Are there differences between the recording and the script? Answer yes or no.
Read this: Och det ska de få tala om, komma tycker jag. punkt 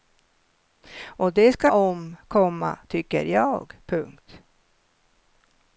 yes